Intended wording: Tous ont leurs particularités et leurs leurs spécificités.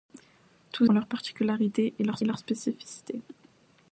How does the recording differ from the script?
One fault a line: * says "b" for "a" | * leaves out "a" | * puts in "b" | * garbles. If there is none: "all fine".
all fine